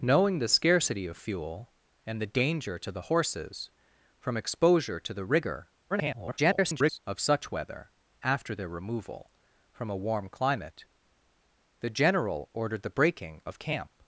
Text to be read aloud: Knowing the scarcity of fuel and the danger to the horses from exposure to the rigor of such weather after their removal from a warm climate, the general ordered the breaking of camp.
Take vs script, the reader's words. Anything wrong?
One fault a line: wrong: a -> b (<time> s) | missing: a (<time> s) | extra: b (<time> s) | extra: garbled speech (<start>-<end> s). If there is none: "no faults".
extra: garbled speech (5.9-7.0 s)